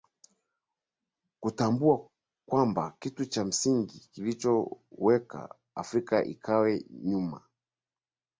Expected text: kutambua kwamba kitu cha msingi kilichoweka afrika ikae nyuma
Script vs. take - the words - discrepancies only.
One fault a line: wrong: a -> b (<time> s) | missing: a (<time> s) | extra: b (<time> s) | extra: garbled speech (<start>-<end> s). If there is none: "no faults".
no faults